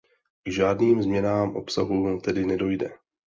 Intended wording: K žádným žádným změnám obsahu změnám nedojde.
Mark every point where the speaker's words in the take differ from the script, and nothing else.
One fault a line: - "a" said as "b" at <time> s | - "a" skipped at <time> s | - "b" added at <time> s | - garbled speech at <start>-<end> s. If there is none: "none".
- "žádným" skipped at 1.0 s
- "změnám" said as "tedy" at 2.2 s